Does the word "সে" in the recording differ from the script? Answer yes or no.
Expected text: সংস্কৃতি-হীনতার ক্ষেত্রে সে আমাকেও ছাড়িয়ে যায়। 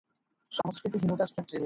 yes